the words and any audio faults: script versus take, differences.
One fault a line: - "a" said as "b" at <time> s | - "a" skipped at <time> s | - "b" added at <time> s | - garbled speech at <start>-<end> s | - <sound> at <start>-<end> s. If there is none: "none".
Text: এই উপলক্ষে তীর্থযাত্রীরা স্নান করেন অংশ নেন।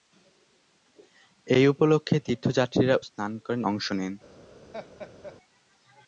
- laugh at 4.7-5.4 s